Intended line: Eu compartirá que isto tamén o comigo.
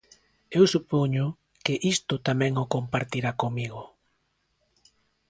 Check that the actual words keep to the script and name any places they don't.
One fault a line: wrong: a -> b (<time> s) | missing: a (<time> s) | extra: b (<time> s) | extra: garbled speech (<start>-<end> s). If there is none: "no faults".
wrong: compartirá -> supoño (0.7 s)
extra: compartirá (2.7 s)